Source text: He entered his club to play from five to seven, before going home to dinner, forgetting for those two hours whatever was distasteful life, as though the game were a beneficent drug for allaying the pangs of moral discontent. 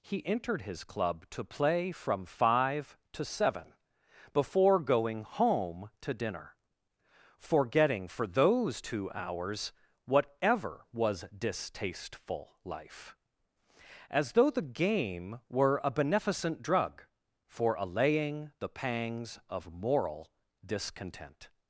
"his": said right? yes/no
yes